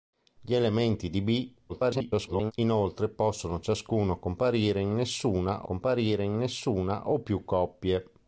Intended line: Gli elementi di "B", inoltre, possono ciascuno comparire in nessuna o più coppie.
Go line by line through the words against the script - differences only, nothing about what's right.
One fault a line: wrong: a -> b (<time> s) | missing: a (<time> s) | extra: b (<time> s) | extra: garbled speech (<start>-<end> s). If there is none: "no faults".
extra: garbled speech (1.7-2.5 s)
extra: comparire in nessuna (5.6 s)